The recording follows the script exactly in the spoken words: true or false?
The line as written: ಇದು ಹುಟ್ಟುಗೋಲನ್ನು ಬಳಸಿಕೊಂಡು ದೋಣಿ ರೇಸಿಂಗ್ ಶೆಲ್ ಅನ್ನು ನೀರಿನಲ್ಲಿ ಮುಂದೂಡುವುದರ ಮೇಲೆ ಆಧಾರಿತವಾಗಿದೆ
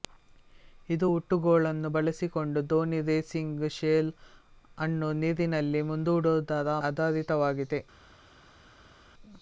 false